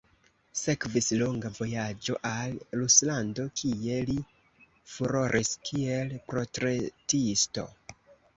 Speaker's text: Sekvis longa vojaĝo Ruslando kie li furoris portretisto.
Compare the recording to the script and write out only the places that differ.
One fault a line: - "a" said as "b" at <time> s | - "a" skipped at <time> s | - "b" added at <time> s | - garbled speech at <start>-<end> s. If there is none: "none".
- "al" added at 2.3 s
- "kiel" added at 5.7 s